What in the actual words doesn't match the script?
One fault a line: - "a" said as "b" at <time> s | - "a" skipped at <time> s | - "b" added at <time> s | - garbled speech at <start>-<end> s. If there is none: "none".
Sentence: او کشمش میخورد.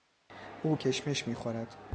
none